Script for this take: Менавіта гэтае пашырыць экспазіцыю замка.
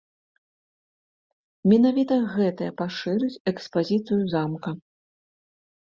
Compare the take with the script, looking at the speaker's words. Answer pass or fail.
pass